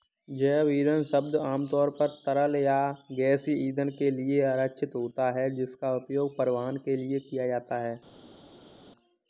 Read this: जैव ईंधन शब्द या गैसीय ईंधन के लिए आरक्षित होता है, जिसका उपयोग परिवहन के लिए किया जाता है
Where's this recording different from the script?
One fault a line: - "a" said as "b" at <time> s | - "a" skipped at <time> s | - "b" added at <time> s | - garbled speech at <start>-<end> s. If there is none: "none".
- "आमतौर पर तरल" added at 1.4 s